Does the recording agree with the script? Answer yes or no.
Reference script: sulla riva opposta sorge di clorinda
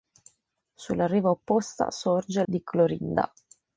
yes